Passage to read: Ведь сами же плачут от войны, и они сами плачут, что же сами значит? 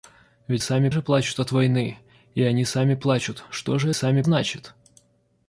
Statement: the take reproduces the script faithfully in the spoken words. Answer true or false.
true